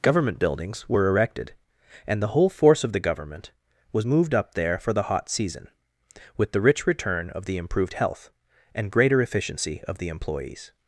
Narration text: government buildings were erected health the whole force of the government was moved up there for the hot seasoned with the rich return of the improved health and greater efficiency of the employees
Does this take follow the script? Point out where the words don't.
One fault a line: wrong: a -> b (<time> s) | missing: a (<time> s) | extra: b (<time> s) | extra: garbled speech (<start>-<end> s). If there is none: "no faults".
wrong: health -> and (2.1 s)
wrong: seasoned -> season (5.3 s)